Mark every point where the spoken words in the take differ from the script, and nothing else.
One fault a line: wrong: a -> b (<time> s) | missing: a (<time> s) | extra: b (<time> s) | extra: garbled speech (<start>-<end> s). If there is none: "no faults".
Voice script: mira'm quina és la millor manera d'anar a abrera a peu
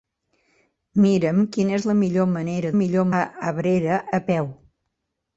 wrong: d'anar -> millor (2.8 s)